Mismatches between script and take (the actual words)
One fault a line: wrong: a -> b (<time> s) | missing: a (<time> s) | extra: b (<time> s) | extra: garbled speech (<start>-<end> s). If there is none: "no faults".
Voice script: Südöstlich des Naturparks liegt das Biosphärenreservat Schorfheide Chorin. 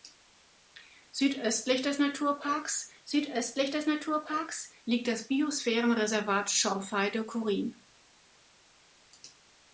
extra: südöstlich des Naturparks (3.0 s)